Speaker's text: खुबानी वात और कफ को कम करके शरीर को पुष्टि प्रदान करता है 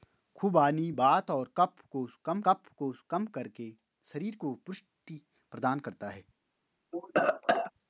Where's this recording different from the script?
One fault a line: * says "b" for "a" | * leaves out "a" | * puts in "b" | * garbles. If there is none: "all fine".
* puts in "कफ को कम"